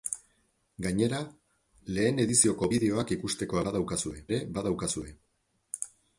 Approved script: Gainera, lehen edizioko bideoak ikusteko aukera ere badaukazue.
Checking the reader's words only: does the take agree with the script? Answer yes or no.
no